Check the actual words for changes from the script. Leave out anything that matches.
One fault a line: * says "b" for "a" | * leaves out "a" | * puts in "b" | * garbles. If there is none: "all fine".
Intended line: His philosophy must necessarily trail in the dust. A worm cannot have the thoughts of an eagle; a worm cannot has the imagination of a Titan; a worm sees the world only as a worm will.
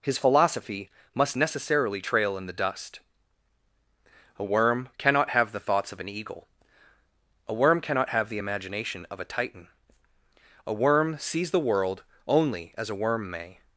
* says "have" for "has"
* says "may" for "will"